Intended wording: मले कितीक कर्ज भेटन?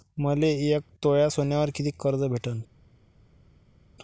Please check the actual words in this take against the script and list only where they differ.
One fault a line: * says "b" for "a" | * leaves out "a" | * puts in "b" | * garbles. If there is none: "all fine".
* puts in "एक तोळा सोन्यावर"